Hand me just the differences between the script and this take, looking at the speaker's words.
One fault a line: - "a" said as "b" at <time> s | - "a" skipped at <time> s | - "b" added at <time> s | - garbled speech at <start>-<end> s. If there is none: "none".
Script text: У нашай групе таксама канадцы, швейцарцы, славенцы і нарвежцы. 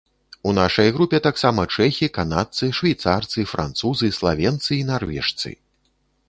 - "чэхі" added at 1.8 s
- "французы" added at 3.5 s